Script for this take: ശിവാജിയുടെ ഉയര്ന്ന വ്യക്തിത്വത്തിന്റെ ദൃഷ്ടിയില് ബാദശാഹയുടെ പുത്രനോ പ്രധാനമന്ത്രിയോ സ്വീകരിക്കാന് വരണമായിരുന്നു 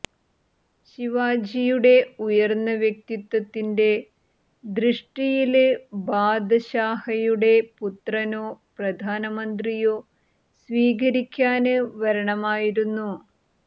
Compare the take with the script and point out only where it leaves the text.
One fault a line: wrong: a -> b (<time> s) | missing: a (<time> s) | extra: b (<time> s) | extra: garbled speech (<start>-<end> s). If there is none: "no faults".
no faults